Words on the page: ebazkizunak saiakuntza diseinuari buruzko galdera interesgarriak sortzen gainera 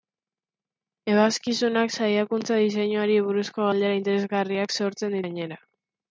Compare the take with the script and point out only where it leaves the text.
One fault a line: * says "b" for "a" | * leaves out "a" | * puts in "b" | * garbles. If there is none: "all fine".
all fine